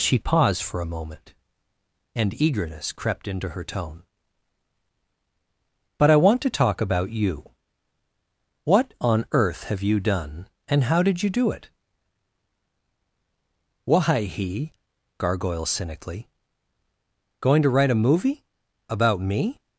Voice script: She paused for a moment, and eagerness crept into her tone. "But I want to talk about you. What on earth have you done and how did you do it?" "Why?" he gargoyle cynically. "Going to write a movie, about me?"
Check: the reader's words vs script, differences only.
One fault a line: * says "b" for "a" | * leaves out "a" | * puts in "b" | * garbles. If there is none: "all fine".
all fine